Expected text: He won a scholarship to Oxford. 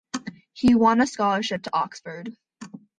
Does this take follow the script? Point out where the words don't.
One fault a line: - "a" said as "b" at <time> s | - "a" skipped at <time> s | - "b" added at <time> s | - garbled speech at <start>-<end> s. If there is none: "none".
none